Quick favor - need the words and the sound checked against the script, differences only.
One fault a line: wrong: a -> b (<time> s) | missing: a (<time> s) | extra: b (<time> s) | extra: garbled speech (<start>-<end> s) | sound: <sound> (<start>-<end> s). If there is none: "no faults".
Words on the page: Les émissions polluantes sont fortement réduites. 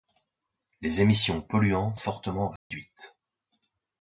missing: sont (2.0 s)
sound: dropout (2.6-2.7 s)